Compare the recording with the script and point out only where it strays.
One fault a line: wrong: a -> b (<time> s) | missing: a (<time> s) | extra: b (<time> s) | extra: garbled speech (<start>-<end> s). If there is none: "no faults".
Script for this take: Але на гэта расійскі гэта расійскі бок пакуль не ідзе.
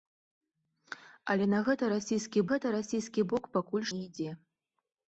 no faults